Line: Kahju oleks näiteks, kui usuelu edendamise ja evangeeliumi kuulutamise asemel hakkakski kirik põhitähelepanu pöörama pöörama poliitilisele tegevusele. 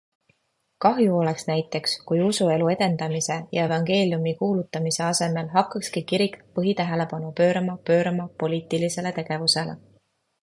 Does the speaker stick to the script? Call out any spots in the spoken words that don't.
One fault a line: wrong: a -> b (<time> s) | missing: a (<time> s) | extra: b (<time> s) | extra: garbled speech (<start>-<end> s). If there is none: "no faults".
no faults